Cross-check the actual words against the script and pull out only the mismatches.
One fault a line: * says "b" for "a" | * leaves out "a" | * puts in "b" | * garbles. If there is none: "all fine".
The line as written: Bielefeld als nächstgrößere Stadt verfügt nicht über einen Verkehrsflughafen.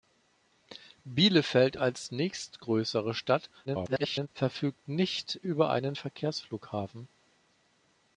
* garbles